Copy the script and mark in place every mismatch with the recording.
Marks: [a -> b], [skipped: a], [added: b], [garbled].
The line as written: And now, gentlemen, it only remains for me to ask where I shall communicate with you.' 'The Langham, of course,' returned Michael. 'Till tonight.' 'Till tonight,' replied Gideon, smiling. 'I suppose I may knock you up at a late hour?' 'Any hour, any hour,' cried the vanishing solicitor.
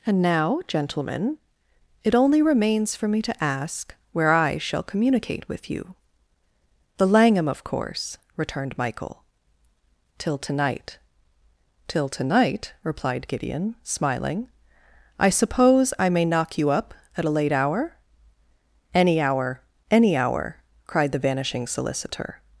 And now, gentlemen, it only remains for me to ask where I shall communicate with you.' 'The Langham, of course,' returned Michael. 'Till tonight.' 'Till tonight,' replied Gideon, smiling. 'I suppose I may knock you up at a late hour?' 'Any hour, any hour,' cried the vanishing solicitor.